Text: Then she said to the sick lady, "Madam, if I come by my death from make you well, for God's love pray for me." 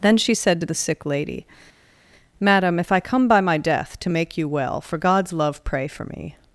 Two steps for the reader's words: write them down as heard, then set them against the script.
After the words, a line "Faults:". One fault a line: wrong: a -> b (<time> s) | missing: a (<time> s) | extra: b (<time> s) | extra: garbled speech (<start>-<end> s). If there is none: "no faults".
Then she said to the sick lady, "Madam, if I come by my death to make you well, for God's love pray for me."
Faults:
wrong: from -> to (4.0 s)